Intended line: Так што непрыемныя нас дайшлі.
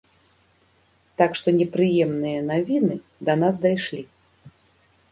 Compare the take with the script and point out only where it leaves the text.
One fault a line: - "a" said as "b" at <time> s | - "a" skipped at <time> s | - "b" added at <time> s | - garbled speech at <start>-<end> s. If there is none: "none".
- "навіны да" added at 2.5 s